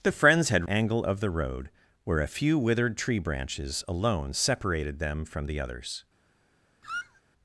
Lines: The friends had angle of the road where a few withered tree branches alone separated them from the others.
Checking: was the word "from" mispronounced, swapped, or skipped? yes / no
no